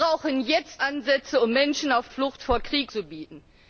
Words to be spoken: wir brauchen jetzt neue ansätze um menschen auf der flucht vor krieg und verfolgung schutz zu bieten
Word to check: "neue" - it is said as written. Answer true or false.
false